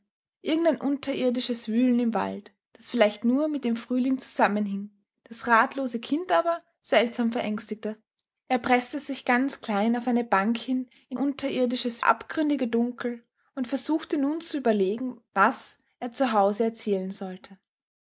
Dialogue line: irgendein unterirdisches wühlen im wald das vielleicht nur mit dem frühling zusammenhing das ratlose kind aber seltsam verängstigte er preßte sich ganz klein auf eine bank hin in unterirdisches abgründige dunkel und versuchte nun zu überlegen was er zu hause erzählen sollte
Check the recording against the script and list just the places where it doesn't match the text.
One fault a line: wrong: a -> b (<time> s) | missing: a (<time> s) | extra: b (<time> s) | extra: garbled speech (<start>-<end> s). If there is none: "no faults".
no faults